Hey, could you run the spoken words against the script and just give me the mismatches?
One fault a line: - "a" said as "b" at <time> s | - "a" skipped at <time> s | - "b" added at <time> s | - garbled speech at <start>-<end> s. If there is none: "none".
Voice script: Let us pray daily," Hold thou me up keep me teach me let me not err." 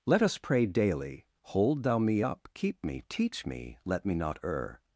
none